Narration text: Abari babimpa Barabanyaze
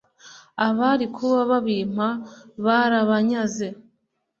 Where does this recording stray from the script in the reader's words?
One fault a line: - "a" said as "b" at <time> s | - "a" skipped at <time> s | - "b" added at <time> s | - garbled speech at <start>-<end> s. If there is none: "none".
- "kuba" added at 1.1 s